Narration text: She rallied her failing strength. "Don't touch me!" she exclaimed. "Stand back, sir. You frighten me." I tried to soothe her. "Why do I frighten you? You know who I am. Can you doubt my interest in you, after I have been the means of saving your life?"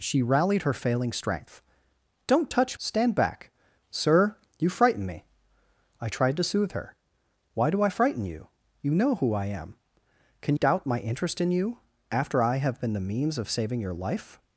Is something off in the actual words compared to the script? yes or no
yes